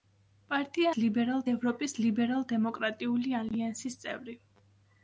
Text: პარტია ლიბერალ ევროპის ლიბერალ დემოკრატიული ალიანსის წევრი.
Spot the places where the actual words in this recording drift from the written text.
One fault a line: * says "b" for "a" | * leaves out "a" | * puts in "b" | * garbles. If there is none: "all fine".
all fine